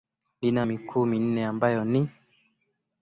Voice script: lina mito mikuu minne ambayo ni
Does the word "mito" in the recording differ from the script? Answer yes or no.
yes